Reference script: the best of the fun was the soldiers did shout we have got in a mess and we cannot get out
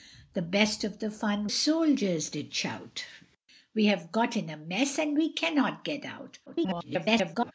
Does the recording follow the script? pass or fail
fail